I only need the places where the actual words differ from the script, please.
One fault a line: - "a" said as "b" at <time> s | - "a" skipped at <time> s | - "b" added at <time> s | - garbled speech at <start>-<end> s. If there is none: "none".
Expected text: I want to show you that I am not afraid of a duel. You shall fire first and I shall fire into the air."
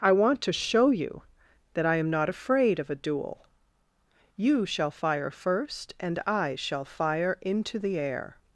none